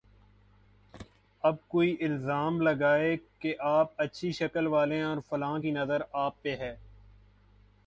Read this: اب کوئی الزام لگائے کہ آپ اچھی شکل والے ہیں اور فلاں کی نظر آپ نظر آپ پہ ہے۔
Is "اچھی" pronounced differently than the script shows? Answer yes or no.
no